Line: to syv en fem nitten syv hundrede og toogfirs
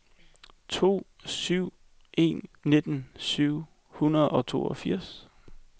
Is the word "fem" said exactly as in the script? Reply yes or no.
no